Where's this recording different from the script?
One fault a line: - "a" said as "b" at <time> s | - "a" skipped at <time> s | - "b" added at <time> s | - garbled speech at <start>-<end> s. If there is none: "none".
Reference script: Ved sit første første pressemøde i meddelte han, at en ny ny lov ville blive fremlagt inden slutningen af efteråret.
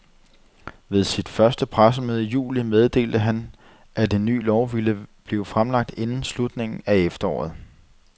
- "første" skipped at 1.6 s
- "juli" added at 2.3 s
- "ny" skipped at 4.4 s